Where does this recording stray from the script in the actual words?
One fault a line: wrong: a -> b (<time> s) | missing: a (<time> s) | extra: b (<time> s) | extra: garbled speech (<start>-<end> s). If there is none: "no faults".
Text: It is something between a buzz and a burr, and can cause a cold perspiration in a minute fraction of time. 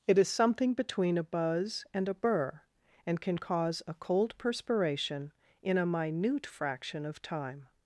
no faults